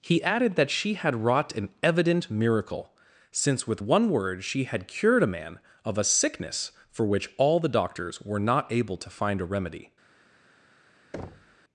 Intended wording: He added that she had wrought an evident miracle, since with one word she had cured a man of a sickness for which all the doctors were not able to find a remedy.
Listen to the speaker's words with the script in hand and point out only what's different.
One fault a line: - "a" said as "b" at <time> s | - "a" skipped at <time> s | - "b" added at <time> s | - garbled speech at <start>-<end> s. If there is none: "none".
none